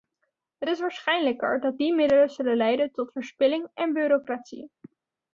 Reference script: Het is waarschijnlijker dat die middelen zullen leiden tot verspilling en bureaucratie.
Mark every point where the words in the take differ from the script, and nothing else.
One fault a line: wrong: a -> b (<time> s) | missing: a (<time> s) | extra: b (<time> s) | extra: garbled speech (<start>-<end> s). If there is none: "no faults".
no faults